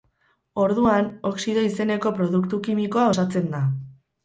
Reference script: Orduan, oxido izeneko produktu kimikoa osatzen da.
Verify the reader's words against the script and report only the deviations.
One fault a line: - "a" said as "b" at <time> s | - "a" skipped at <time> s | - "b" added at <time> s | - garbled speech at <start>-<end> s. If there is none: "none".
none